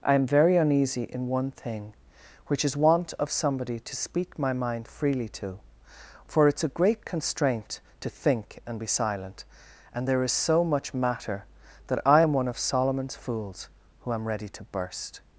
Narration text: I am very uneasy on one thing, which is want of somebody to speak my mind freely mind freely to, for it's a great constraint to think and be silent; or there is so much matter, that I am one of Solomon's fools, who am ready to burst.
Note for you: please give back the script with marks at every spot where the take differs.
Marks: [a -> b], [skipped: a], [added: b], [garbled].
I am very uneasy [on -> in] one thing, which is want of somebody to speak my mind freely [skipped: mind freely] to, for it's a great constraint to think and be silent; [or -> and] there is so much matter, that I am one of Solomon's fools, who am ready to burst.